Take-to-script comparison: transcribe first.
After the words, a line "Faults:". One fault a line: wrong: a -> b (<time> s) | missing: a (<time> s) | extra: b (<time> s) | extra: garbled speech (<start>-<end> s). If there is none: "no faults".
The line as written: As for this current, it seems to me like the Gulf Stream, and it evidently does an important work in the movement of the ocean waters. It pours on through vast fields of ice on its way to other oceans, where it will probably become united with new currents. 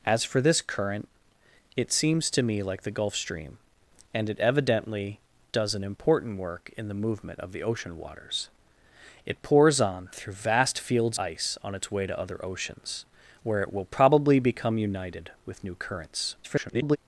As for this current, it seems to me like the Gulf Stream, and it evidently does an important work in the movement of the ocean waters. It pours on through vast fields ice on its way to other oceans, where it will probably become united with new currents. [garbled]
Faults:
missing: of (11.2 s)
extra: garbled speech (16.4-17.0 s)